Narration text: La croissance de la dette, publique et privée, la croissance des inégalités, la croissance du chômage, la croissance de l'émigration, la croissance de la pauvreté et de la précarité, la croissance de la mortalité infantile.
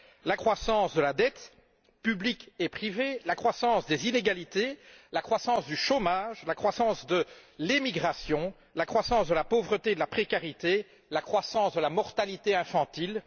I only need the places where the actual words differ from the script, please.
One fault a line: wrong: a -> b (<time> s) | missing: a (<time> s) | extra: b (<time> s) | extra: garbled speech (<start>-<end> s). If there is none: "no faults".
no faults